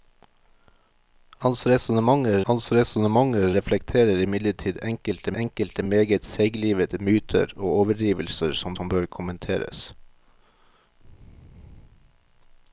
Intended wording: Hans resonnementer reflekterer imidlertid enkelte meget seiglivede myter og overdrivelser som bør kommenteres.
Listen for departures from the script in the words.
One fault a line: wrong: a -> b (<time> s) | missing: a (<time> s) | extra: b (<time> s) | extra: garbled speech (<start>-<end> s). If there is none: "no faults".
extra: hans resonnementer (2.5 s)
extra: enkelte (5.4 s)
extra: som (8.8 s)